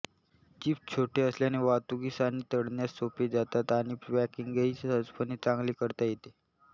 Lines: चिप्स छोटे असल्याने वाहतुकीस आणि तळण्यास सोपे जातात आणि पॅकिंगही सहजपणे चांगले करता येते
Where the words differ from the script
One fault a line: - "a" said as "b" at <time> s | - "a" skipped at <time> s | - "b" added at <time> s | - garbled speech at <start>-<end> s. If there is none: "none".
none